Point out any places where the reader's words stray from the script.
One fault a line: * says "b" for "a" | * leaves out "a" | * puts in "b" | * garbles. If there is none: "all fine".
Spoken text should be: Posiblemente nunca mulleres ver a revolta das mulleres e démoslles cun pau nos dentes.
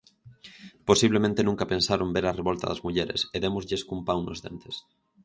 * says "pensaron" for "mulleres"